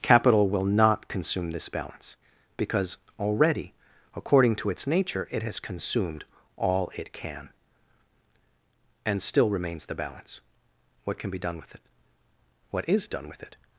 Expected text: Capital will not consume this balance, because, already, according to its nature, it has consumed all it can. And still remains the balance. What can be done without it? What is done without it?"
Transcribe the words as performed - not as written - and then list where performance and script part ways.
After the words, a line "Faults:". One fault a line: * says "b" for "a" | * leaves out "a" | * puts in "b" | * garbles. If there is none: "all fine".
Capital will not consume this balance, because, already, according to its nature, it has consumed all it can. And still remains the balance. What can be done with it? What is done with it?"
Faults:
* says "with" for "without"
* says "with" for "without"